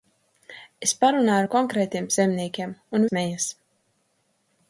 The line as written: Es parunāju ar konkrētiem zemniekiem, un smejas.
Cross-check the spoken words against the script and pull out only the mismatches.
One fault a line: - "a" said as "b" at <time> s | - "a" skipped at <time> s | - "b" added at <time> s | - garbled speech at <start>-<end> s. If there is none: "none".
none